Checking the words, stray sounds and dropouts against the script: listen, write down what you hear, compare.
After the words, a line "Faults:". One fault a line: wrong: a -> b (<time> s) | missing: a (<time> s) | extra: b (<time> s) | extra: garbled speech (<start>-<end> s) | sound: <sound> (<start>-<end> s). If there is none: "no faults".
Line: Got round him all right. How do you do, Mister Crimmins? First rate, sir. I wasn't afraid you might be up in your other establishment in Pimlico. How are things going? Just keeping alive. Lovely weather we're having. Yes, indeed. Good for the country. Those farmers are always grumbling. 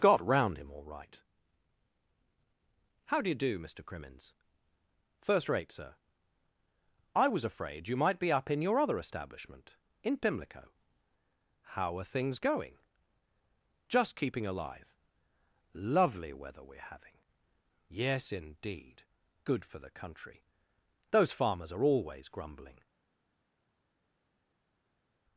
Got round him all right. How do you do, Mister Crimmins? First rate, sir. I was afraid you might be up in your other establishment in Pimlico. How are things going? Just keeping alive. Lovely weather we're having. Yes, indeed. Good for the country. Those farmers are always grumbling.
Faults:
wrong: wasn't -> was (7.3 s)